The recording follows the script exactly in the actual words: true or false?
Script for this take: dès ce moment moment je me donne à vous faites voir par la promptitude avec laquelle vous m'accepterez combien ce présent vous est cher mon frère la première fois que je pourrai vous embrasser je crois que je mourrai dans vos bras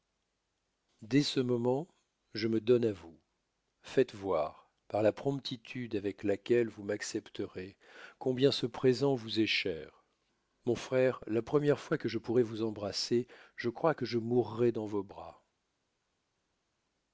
false